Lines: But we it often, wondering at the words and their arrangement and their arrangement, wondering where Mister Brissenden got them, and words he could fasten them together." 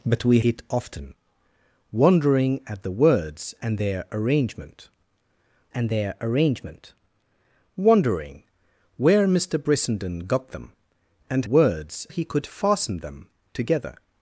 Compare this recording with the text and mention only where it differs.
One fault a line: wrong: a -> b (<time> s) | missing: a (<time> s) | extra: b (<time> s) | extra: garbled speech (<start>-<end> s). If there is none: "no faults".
no faults